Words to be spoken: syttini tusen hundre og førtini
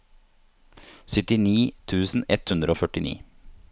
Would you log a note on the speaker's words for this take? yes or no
yes